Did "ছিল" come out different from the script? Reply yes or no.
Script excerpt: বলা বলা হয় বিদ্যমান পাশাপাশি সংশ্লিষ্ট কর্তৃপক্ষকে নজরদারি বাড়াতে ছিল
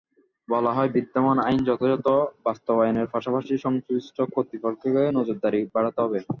yes